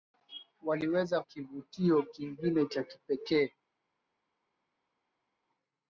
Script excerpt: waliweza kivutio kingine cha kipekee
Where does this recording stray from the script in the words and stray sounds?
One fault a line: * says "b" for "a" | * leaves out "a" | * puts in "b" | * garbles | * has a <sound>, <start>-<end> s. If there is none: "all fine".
all fine